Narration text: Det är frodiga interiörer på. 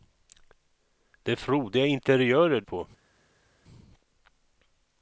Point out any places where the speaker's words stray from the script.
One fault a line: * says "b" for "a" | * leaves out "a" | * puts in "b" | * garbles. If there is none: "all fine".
all fine